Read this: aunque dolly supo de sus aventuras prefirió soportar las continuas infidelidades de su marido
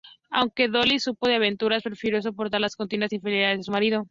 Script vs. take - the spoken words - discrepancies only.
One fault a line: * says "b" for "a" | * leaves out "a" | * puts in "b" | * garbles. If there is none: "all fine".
all fine